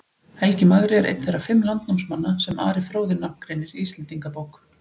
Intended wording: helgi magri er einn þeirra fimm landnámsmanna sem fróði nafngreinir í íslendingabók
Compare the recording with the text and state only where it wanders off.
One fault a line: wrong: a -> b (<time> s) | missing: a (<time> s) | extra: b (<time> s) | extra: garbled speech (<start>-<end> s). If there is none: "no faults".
extra: ari (2.7 s)